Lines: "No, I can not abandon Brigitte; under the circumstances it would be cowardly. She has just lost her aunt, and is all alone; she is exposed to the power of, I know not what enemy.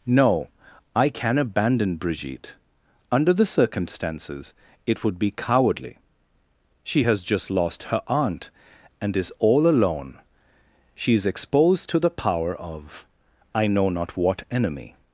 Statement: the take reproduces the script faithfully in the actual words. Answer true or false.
false